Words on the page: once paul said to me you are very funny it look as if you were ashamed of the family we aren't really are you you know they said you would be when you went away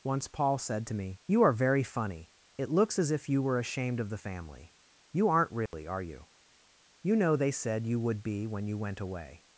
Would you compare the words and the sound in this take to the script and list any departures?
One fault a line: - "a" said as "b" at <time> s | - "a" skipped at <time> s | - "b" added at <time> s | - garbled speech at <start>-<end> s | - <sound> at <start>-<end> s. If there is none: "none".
- "look" said as "looks" at 2.7 s
- "we" said as "you" at 5.1 s
- dropout at 5.7-5.7 s